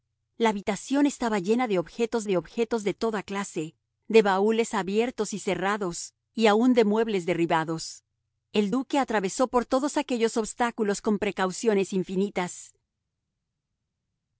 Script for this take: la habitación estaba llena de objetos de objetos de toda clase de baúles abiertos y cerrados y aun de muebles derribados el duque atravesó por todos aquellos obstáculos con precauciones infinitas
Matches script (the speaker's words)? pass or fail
pass